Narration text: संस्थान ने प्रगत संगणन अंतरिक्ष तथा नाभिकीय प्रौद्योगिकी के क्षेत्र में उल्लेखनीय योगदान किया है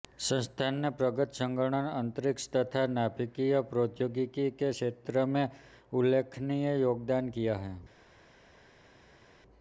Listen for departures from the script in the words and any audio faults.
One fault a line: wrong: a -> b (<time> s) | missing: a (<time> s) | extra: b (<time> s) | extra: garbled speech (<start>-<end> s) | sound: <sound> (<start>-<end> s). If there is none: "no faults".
no faults